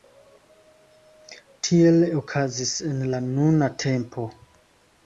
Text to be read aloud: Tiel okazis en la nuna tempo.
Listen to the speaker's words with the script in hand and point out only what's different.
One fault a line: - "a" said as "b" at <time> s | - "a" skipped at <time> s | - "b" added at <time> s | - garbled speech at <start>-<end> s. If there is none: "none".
none